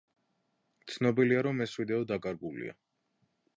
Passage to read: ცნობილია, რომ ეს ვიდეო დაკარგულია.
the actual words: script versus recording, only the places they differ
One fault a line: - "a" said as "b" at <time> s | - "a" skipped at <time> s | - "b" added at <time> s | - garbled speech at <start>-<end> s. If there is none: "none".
none